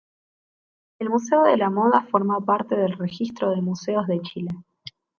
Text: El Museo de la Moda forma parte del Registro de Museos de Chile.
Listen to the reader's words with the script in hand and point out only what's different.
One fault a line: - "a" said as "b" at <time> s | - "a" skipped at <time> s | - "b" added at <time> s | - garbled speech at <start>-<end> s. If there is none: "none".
none